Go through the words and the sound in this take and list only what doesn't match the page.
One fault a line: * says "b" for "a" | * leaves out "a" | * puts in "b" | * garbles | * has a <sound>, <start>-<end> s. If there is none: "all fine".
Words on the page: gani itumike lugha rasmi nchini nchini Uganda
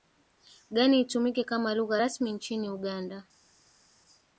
* puts in "kama"
* leaves out "nchini"